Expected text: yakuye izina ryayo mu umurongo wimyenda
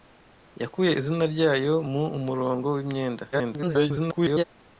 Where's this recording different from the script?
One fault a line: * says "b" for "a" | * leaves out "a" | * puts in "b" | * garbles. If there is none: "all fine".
* garbles